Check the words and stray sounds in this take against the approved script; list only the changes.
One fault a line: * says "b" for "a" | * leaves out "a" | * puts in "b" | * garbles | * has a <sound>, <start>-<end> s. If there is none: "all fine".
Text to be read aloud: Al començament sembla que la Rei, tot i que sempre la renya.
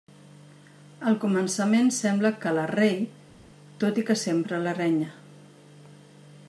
all fine